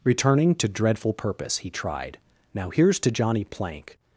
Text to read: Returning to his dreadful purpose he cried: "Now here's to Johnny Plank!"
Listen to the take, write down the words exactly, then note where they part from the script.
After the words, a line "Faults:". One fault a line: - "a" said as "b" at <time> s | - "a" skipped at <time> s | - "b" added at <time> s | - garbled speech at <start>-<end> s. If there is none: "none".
Returning to dreadful purpose he tried: "Now here's to Johnny Plank!"
Faults:
- "his" skipped at 0.7 s
- "cried" said as "tried" at 1.7 s